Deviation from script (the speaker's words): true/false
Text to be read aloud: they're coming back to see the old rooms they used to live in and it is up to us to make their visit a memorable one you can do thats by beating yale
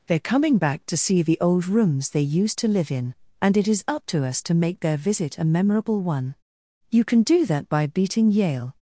true